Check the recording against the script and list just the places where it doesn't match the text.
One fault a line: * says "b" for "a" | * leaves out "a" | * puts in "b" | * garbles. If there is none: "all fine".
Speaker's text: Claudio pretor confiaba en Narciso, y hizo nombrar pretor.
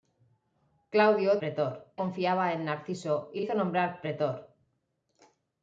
all fine